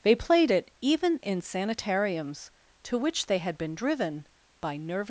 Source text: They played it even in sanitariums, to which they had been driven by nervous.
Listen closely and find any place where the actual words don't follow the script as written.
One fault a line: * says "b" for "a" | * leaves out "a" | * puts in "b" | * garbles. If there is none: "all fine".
all fine